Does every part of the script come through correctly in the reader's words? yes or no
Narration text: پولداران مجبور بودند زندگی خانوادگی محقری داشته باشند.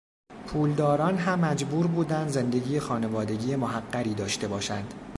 no